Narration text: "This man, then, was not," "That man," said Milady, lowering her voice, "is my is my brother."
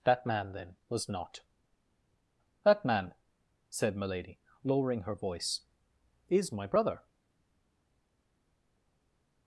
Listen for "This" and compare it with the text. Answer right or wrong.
wrong